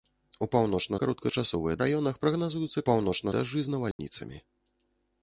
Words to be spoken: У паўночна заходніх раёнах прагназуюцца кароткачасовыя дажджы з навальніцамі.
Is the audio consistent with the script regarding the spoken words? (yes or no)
no